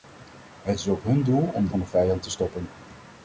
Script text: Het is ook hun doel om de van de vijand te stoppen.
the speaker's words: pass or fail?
pass